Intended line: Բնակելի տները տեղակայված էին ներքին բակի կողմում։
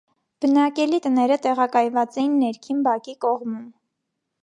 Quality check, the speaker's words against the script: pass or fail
pass